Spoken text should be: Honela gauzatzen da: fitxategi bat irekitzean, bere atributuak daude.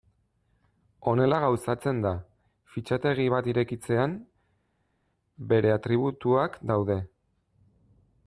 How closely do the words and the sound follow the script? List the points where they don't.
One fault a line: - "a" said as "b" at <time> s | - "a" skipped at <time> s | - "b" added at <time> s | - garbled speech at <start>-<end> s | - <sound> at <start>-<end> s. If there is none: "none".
none